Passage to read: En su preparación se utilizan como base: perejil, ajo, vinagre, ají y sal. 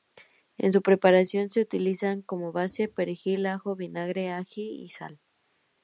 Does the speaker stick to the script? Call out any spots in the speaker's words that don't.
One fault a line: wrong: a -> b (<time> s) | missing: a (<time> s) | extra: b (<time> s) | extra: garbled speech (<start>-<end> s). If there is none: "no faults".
no faults